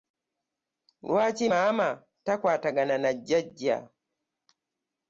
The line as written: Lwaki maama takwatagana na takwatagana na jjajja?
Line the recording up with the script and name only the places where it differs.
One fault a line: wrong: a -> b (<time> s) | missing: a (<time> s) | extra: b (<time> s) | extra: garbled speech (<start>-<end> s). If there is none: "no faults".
missing: takwatagana na (3.1 s)